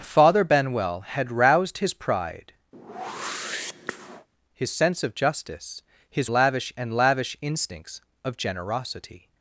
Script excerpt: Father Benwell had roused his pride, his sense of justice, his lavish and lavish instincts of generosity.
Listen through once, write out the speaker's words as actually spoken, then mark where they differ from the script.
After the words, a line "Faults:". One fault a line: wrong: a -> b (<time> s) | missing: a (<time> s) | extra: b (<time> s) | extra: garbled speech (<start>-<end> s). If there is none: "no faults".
Father Benwell had roused his pride, his sense of justice, his lavish and lavish instincts of generosity.
Faults:
no faults